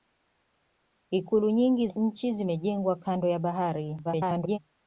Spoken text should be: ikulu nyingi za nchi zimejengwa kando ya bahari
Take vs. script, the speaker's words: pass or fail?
fail